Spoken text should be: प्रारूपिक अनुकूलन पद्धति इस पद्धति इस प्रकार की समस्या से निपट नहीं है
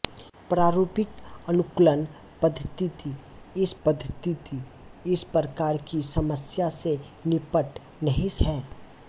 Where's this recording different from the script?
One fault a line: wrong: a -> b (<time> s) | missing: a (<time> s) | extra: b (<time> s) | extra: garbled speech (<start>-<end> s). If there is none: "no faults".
no faults